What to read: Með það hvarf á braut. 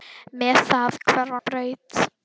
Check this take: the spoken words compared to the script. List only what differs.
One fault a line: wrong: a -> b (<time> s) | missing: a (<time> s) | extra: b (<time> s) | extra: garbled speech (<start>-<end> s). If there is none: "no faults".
no faults